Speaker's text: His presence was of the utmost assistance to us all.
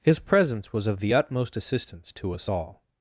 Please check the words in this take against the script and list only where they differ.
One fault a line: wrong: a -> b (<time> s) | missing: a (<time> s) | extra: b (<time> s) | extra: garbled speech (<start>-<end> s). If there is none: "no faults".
no faults